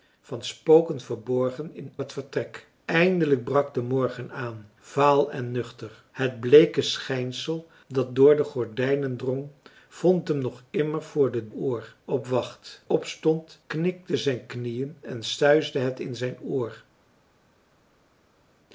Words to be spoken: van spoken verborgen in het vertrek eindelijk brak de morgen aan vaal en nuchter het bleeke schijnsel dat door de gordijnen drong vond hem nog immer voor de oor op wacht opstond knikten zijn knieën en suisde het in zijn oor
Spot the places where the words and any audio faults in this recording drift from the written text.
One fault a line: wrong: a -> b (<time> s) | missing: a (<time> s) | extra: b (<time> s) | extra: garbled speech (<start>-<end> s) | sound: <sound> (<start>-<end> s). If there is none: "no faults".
no faults